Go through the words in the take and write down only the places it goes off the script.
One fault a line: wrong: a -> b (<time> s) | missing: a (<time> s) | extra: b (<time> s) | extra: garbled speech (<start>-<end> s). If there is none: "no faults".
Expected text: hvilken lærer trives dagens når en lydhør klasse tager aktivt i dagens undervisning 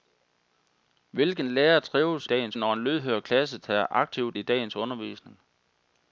no faults